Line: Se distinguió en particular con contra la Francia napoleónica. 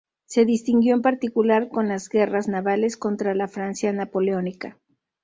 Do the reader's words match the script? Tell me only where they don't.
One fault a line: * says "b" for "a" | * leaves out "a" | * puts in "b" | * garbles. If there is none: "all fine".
* puts in "las guerras navales"